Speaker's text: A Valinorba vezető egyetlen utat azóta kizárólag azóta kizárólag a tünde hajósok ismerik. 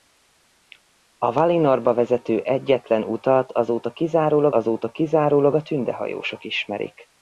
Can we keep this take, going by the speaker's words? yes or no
yes